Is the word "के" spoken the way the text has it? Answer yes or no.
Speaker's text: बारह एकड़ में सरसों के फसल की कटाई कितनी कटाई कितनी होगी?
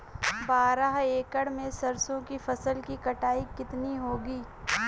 no